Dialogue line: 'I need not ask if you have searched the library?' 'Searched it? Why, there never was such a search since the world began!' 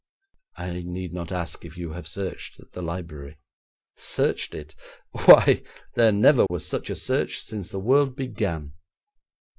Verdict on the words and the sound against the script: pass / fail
fail